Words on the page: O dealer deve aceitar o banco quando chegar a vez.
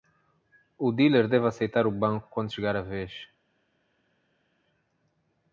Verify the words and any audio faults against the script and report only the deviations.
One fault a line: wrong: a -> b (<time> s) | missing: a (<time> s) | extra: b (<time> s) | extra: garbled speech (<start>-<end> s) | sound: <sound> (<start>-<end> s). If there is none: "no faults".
no faults